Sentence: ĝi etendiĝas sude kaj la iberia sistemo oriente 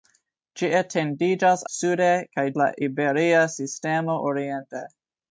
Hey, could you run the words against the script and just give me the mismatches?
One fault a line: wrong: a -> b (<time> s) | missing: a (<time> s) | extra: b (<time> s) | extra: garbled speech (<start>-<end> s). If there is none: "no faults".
no faults